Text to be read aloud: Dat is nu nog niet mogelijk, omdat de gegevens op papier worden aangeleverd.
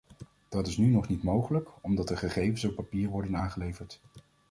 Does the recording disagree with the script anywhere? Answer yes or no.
no